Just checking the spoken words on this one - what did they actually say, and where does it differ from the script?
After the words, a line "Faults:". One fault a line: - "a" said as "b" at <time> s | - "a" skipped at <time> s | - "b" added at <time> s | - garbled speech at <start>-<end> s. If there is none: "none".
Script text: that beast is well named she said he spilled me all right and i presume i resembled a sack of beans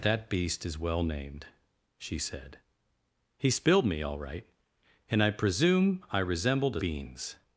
that beast is well named she said he spilled me all right and i presume i resembled a beans
Faults:
- "sack of" skipped at 6.8 s